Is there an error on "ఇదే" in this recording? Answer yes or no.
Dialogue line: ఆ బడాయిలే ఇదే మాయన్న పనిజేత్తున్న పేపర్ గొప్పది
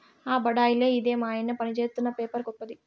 no